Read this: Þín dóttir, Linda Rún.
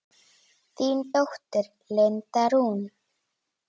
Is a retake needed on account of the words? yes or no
no